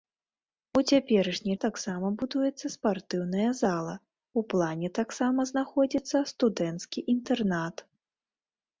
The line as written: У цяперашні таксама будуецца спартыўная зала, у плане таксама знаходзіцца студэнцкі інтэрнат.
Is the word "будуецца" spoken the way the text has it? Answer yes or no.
yes